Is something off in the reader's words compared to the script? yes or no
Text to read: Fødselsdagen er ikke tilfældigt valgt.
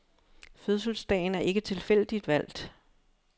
no